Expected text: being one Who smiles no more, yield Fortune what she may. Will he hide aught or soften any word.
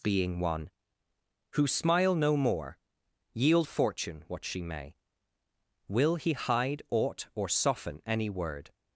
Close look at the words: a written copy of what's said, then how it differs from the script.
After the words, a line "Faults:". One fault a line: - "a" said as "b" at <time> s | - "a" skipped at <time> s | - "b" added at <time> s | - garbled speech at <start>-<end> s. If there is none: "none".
being one Who smile no more, yield Fortune what she may. Will he hide aught or soften any word.
Faults:
- "smiles" said as "smile" at 1.7 s